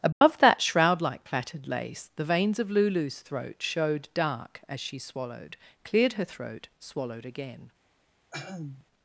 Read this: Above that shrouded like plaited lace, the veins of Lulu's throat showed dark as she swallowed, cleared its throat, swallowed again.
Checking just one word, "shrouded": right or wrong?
wrong